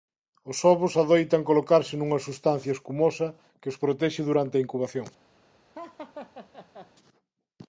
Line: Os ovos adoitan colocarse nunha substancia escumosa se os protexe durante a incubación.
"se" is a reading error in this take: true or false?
true